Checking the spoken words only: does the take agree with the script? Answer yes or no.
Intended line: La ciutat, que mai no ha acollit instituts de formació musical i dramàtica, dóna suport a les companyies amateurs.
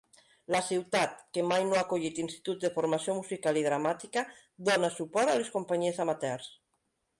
yes